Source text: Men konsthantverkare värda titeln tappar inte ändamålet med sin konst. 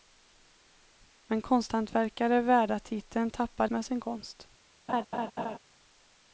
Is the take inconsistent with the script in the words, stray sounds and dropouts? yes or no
yes